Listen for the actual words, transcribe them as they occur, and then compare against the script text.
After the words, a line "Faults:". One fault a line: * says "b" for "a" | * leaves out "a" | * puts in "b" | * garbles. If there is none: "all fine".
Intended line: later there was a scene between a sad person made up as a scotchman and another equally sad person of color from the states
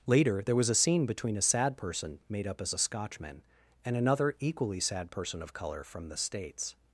later there was a scene between a sad person made up as a scotchman and another equally sad person of color from the states
Faults:
all fine